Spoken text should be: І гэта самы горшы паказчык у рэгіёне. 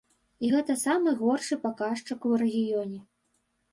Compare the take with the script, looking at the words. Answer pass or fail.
pass